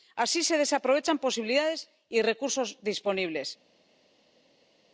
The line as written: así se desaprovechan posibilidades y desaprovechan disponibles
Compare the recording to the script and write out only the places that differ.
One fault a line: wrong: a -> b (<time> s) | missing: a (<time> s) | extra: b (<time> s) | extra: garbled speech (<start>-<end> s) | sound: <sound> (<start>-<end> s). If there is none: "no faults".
wrong: desaprovechan -> recursos (2.3 s)